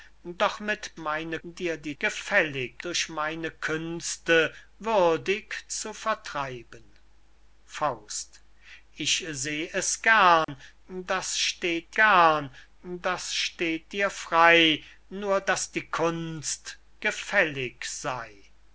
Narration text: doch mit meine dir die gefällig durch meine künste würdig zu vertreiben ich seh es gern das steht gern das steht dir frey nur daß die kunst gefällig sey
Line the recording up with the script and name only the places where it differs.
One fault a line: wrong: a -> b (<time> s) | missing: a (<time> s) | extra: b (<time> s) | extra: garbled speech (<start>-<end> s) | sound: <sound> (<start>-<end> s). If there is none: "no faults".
sound: dropout (10.4-10.5 s)